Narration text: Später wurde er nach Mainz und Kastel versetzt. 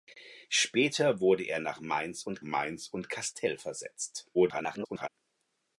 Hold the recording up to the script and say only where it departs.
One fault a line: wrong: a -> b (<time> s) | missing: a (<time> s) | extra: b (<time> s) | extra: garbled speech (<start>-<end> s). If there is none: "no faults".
extra: Mainz und (2.4 s)
extra: garbled speech (4.3-5.1 s)